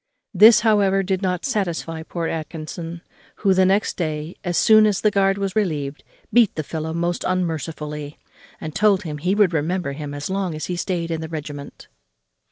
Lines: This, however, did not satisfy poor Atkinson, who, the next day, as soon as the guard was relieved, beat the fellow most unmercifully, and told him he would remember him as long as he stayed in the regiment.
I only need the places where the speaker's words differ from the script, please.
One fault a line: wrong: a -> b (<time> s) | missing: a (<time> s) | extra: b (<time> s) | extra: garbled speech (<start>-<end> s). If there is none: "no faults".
no faults